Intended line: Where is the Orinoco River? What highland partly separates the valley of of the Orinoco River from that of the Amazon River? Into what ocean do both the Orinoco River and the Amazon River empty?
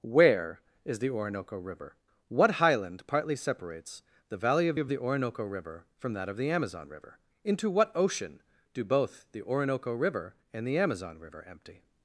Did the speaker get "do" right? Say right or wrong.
right